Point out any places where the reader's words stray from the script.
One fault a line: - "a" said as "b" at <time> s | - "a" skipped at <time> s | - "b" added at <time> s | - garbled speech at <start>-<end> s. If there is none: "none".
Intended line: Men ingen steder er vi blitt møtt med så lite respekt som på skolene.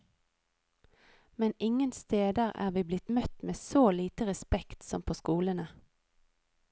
none